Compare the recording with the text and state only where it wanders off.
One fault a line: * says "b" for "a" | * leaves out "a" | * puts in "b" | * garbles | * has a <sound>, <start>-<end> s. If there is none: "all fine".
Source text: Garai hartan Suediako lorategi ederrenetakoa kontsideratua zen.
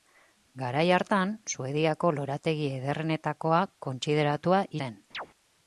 * has a chirp, 5.1-5.3 s